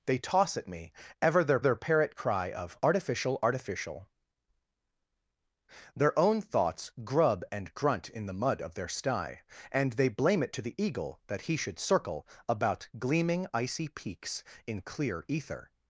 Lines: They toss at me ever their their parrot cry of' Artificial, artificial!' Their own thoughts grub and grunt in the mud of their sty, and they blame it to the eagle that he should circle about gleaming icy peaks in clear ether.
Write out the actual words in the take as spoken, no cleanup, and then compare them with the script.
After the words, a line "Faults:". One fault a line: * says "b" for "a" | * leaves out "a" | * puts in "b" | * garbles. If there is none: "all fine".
They toss at me ever their their parrot cry of' Artificial, artificial!' Their own thoughts grub and grunt in the mud of their sty, and they blame it to the eagle that he should circle about gleaming icy peaks in clear ether.
Faults:
all fine